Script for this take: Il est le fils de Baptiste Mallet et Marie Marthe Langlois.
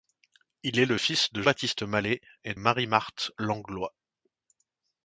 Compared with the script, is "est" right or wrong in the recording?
right